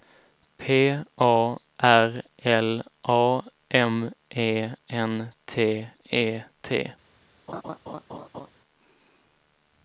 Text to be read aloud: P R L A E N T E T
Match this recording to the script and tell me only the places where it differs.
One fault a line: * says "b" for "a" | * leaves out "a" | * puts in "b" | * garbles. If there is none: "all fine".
* puts in "A"
* puts in "M"